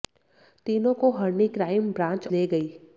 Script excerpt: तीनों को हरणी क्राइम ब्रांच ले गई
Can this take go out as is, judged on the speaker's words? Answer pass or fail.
pass